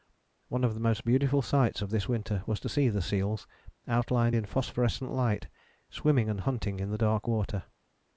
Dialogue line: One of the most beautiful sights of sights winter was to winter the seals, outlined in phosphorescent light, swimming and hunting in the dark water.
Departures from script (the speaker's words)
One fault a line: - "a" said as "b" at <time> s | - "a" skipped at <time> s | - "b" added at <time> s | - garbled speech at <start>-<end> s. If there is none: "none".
- "sights" said as "this" at 1.9 s
- "winter" said as "see" at 2.7 s